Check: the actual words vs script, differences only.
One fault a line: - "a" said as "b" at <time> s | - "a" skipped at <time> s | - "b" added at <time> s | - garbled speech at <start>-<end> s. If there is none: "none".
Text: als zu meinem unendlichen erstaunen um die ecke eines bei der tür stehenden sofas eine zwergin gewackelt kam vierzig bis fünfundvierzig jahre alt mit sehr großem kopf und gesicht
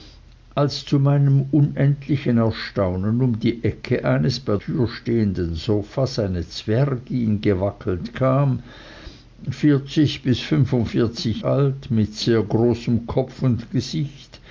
- "der" skipped at 4.6 s
- "jahre" skipped at 11.4 s